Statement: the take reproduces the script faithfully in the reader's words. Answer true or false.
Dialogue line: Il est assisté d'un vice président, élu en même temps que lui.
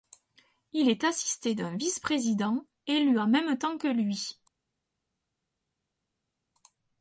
true